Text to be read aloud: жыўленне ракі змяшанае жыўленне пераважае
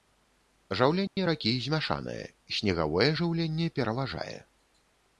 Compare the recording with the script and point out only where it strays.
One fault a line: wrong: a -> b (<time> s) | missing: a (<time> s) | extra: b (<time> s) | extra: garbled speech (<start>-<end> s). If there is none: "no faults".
extra: снегавое (2.6 s)